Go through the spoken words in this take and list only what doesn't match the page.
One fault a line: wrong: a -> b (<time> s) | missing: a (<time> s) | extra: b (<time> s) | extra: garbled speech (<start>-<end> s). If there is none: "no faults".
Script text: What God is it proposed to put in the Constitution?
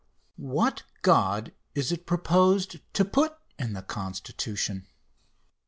no faults